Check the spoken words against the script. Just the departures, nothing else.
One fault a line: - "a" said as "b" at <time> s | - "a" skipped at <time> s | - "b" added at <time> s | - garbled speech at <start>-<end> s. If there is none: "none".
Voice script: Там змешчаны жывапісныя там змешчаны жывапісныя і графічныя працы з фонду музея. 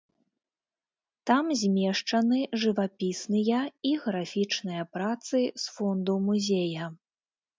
- "там змешчаны жывапісныя" skipped at 3.6 s